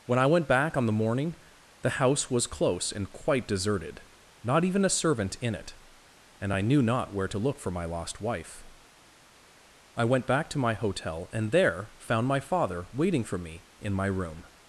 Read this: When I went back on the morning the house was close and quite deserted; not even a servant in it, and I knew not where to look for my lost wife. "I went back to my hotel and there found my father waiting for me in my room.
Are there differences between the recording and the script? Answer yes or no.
no